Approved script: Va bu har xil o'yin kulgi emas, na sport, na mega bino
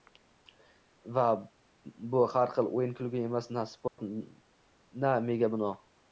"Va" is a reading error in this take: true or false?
false